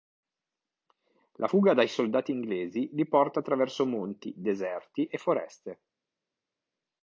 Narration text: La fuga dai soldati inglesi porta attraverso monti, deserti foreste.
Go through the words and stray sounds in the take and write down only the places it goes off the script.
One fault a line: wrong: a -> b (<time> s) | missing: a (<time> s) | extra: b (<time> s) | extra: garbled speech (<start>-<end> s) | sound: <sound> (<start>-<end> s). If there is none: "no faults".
extra: li (2.9 s)
extra: e (5.1 s)